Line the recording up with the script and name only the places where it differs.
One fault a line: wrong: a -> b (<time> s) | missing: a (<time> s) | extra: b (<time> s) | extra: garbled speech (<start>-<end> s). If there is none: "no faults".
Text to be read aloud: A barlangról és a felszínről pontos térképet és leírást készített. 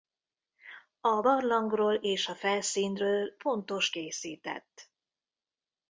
missing: térképet és leírást (3.9 s)